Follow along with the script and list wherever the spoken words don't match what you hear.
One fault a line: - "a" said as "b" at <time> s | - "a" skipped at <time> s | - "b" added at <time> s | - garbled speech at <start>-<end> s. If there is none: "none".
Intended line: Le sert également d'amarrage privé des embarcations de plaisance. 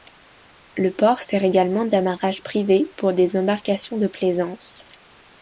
- "port" added at 0.9 s
- "pour" added at 3.0 s